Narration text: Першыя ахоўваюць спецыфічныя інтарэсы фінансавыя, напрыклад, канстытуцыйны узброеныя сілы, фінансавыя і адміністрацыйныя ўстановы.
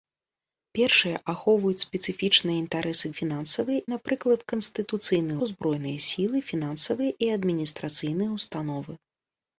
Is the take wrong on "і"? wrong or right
right